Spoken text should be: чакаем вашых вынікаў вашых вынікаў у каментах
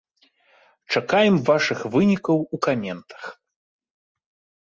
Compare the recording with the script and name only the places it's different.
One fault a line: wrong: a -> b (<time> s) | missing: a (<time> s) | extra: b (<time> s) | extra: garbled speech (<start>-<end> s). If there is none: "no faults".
missing: вашых вынікаў (2.4 s)